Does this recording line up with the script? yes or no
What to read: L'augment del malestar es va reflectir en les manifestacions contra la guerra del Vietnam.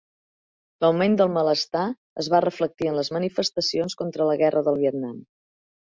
yes